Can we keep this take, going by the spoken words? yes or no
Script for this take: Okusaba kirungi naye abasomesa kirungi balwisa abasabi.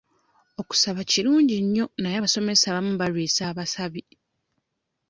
no